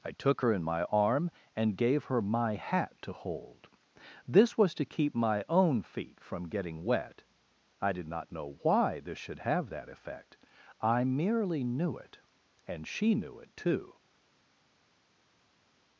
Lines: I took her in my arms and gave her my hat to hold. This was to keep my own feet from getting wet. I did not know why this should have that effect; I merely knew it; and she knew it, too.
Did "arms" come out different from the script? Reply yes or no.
yes